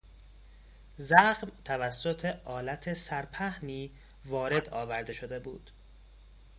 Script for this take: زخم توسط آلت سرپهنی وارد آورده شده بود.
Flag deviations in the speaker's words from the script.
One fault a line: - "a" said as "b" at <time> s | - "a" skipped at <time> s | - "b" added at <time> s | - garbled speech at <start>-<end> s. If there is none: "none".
none